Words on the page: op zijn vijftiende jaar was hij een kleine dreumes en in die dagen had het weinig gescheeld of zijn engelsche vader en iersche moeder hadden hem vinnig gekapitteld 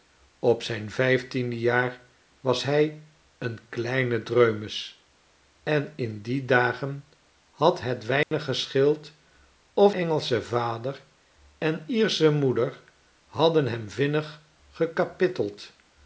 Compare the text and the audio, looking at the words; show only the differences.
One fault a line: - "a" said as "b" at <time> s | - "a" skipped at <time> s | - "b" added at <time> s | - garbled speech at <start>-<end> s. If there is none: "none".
- "zijn" skipped at 9.9 s